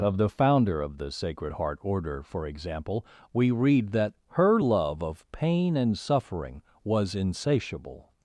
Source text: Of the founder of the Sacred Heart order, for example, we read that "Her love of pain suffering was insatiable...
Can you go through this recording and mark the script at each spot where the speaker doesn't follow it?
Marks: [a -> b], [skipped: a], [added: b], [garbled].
Of the founder of the Sacred Heart order, for example, we read that "Her love of pain [added: and] suffering was insatiable...